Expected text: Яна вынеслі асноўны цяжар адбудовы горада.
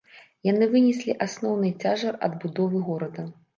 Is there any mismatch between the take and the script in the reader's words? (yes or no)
yes